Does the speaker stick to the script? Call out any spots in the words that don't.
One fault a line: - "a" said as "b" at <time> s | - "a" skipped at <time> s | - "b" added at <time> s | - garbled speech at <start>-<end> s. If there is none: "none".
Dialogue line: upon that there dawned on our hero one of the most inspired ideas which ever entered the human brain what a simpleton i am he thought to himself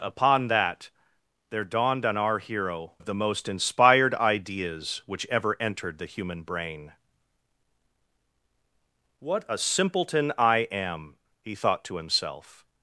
- "one" skipped at 2.9 s